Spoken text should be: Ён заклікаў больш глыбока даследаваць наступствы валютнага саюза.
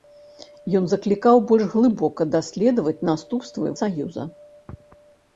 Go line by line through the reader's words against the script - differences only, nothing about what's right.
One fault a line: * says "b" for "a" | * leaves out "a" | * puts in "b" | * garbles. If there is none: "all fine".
* leaves out "валютнага"